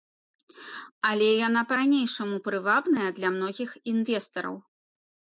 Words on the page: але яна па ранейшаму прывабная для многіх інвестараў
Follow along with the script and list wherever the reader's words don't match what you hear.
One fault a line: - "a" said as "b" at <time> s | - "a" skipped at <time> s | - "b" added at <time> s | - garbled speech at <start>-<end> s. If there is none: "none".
none